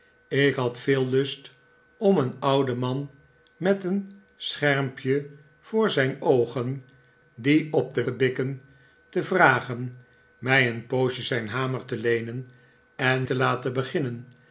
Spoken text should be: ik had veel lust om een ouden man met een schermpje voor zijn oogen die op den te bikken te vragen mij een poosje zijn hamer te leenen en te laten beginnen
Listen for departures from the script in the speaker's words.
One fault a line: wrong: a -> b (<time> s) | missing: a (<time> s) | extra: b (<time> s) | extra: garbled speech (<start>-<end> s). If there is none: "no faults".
no faults